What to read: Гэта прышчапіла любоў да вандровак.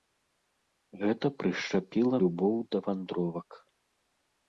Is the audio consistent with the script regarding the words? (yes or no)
yes